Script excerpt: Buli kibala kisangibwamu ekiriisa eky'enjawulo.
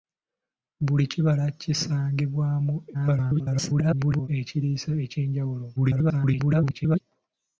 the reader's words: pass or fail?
fail